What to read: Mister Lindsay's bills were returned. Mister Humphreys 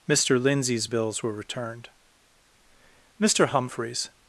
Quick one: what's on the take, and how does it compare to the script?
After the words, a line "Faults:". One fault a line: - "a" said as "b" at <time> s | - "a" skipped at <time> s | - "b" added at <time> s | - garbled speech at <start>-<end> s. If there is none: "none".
Mister Lindsay's bills were returned. Mister Humphreys
Faults:
none